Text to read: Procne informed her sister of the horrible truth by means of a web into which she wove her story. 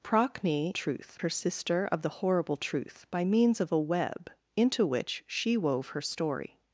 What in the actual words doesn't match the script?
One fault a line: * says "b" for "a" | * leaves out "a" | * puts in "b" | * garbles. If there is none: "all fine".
* says "truth" for "informed"